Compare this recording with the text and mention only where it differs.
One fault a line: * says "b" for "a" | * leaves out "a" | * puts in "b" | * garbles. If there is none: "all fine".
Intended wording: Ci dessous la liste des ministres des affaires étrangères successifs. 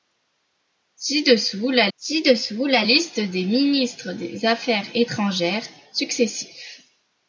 * puts in "ci dessous la"